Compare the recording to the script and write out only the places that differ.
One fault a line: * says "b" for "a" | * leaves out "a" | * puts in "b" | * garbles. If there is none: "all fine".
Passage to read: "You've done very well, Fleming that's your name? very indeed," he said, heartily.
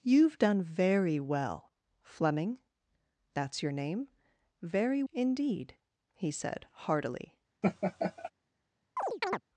all fine